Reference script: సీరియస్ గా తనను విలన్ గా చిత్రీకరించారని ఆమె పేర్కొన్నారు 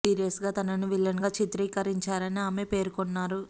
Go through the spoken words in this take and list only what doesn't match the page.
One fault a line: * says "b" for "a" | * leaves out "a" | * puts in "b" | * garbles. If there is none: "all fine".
all fine